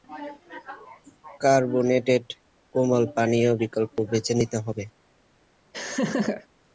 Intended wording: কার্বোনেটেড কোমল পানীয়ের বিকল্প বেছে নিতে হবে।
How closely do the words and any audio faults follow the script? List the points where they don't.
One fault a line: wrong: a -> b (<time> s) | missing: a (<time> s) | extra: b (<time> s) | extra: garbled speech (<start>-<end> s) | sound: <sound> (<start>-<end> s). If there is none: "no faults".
sound: laugh (5.7-6.5 s)